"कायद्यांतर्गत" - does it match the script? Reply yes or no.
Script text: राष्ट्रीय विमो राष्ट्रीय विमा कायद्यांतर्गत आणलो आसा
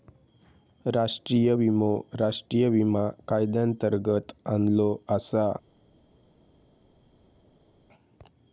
yes